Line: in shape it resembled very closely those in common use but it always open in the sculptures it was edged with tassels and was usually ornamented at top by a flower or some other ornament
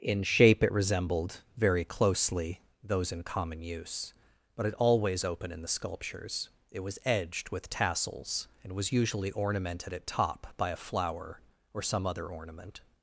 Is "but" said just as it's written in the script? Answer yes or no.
yes